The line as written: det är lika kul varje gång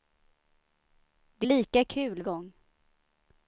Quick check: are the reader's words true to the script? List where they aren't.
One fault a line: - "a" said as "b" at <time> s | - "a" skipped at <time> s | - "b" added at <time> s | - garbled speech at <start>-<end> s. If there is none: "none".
- "är" skipped at 1.5 s
- "varje" skipped at 2.2 s